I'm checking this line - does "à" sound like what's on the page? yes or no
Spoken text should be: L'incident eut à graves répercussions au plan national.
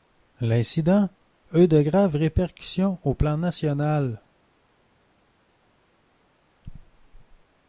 no